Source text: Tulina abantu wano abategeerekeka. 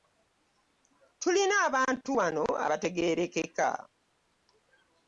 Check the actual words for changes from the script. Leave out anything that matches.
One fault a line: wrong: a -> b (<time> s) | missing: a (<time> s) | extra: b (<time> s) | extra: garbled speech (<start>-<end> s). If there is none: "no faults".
no faults